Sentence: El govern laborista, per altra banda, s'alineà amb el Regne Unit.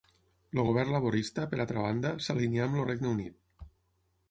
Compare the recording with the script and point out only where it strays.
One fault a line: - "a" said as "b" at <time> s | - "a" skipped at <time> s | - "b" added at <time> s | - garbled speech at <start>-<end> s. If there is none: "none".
none